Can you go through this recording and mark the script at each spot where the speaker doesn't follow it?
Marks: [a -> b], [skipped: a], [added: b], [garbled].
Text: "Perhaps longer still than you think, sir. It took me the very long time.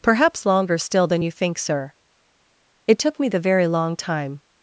"Perhaps longer still than you think, sir. It took me the very long time.